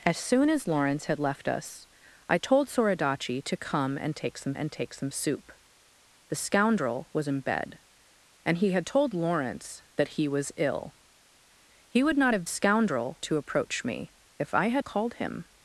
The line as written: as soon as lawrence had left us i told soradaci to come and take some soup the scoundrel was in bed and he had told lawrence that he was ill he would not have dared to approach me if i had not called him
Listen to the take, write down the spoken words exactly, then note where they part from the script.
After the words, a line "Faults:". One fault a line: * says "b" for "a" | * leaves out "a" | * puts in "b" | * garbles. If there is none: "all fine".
as soon as lawrence had left us i told soradaci to come and take some and take some soup the scoundrel was in bed and he had told lawrence that he was ill he would not have scoundrel to approach me if i had called him
Faults:
* puts in "and take some"
* says "scoundrel" for "dared"
* leaves out "not"